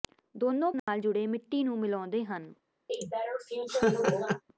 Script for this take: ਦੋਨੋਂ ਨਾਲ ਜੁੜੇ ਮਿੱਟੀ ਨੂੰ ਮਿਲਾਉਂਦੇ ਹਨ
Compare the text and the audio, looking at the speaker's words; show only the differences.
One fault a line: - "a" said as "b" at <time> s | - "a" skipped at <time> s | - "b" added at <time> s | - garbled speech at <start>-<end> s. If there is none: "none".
none